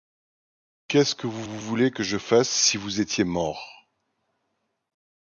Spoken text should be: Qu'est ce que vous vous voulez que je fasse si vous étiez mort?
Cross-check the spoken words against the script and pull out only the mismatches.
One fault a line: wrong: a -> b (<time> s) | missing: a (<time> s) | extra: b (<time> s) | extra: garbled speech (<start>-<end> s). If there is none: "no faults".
no faults